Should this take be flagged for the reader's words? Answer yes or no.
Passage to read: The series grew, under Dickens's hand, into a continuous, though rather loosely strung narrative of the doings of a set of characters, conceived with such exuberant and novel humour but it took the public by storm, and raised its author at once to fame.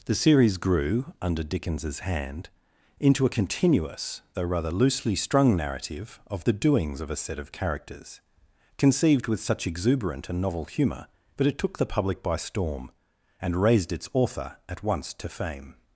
no